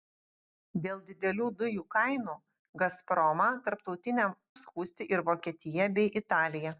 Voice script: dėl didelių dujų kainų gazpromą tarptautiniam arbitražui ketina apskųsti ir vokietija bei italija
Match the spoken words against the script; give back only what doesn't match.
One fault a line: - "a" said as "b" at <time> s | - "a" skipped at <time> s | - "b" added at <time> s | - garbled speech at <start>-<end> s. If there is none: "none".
- "arbitražui ketina" skipped at 4.3 s